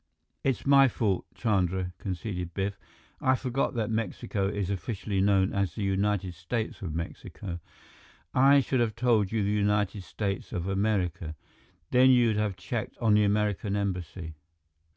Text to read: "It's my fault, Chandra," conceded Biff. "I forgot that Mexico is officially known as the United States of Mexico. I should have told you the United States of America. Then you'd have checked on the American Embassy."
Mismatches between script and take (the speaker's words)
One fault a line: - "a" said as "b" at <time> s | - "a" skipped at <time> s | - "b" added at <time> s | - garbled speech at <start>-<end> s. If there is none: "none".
none